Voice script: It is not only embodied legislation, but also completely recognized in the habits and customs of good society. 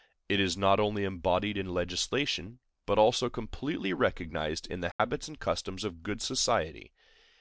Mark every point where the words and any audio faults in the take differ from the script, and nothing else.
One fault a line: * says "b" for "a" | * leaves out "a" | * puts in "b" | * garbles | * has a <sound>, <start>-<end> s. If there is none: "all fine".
* puts in "in"
* has a dropout, 4.9-5.0 s